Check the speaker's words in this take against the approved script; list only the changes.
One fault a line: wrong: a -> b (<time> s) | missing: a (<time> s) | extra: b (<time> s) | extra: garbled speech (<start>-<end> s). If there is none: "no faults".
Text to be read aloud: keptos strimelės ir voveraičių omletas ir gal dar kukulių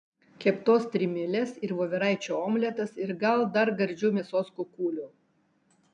extra: gardžių mėsos (3.8 s)